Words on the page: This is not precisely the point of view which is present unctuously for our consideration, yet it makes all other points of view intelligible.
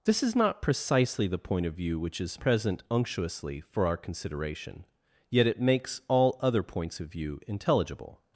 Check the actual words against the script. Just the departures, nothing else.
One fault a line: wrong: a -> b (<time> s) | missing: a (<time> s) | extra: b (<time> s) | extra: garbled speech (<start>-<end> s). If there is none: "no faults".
no faults